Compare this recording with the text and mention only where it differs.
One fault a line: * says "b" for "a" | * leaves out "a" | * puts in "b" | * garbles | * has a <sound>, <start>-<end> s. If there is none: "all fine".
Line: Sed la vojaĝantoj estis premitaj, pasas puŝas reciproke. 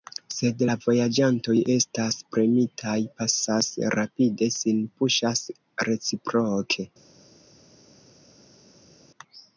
* says "estas" for "estis"
* puts in "rapide sin"